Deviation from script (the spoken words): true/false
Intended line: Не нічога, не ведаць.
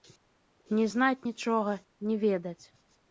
true